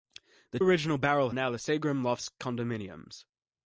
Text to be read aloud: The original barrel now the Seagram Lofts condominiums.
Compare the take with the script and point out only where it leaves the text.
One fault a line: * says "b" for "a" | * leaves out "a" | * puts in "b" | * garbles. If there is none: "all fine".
all fine